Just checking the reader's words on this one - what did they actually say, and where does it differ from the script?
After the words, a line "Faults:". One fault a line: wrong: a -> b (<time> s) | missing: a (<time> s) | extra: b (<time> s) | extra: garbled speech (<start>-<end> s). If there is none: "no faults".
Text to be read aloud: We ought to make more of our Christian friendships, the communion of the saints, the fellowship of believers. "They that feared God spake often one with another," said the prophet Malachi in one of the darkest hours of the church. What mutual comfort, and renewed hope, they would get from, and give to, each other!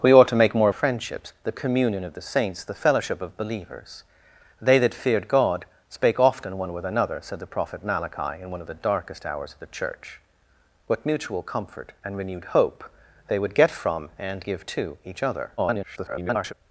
We ought to make more friendships, the communion of the saints, the fellowship of believers. "They that feared God spake often one with another," said the prophet Malachi in one of the darkest hours of the church. What mutual comfort, and renewed hope, they would get from, and give to, each other! [garbled]
Faults:
missing: of our Christian (0.7 s)
extra: garbled speech (15.6-16.5 s)